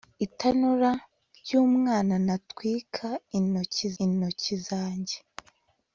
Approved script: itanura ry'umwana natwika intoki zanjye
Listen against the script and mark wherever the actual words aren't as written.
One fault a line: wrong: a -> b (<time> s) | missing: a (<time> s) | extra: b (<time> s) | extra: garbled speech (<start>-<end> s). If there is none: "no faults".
extra: intoki (4.0 s)